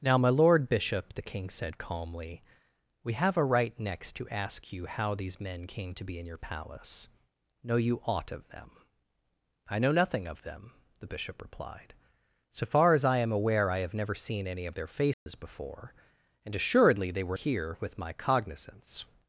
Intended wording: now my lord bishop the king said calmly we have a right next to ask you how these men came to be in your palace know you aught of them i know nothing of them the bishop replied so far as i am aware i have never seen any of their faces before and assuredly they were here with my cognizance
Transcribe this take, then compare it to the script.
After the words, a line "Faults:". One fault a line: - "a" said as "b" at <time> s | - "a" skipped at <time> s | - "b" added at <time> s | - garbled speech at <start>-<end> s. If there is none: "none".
now my lord bishop the king said calmly we have a right next to ask you how these men came to be in your palace know you aught of them i know nothing of them the bishop replied so far as i am aware i have never seen any of their faces before and assuredly they were here with my cognizance
Faults:
none